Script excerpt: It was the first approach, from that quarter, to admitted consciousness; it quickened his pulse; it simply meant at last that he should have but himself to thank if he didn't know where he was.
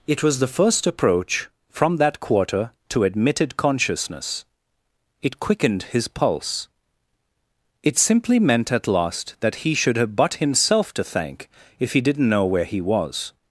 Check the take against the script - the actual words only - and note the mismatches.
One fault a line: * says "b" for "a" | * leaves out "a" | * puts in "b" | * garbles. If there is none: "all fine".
all fine